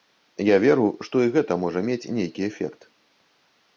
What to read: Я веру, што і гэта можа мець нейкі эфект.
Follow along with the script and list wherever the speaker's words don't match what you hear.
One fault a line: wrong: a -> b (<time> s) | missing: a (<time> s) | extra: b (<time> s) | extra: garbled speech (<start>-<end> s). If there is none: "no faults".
no faults